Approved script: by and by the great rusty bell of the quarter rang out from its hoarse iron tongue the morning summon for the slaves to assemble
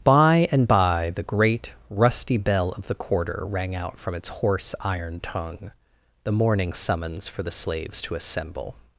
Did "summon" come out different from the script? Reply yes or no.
yes